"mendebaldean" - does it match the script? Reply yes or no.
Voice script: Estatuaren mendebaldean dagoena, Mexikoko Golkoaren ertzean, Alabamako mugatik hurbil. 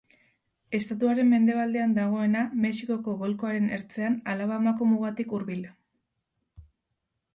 yes